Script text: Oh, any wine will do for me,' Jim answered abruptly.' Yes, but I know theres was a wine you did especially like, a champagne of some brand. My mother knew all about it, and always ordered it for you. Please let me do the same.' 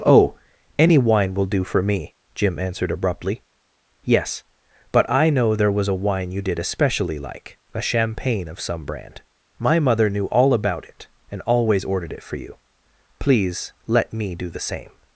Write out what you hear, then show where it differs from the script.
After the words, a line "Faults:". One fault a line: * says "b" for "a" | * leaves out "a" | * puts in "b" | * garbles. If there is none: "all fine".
Oh, any wine will do for me,' Jim answered abruptly.' Yes, but I know there was a wine you did especially like, a champagne of some brand. My mother knew all about it, and always ordered it for you. Please let me do the same.'
Faults:
* says "there" for "theres"